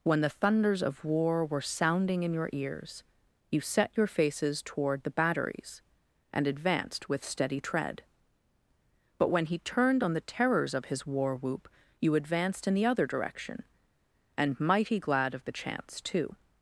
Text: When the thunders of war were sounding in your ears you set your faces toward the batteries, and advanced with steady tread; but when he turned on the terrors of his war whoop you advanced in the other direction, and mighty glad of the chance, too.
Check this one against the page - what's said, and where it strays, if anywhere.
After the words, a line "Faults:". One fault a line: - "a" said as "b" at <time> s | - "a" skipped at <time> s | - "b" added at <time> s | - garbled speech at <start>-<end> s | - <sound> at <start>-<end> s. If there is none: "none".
When the thunders of war were sounding in your ears you set your faces toward the batteries, and advanced with steady tread; but when he turned on the terrors of his war whoop you advanced in the other direction, and mighty glad of the chance, too.
Faults:
none